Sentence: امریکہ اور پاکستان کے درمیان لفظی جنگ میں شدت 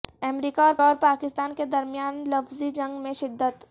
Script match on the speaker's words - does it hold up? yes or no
no